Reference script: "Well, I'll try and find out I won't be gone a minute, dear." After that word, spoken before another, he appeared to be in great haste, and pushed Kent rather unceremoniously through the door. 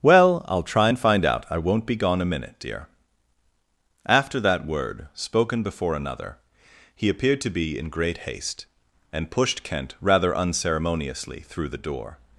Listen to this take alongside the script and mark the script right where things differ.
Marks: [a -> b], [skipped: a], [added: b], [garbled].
"Well, I'll try and find out I won't be gone a minute, dear." After that word, spoken before another, he appeared to be in great haste, and pushed Kent rather unceremoniously through the door.